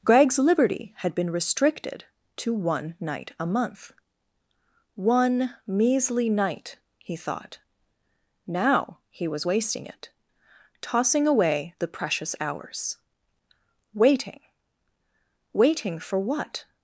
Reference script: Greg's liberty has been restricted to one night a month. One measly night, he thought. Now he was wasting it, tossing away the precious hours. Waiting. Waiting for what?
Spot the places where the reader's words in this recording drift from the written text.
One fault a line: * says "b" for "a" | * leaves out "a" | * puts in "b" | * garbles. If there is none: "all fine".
* says "had" for "has"